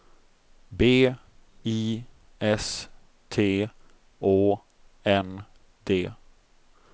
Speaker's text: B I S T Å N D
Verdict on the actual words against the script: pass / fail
pass